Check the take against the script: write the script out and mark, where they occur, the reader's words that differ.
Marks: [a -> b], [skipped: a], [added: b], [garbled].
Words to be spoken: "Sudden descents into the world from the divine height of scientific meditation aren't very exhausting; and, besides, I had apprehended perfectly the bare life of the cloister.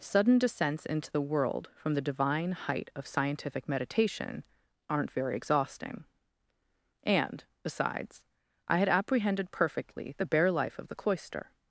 "Sudden descents into the world from the divine height of scientific meditation aren't very exhausting; and, besides, I had apprehended perfectly the bare life of the cloister.